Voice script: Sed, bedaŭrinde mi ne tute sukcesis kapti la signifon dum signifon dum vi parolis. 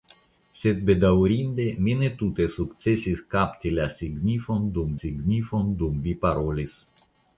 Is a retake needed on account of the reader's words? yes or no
no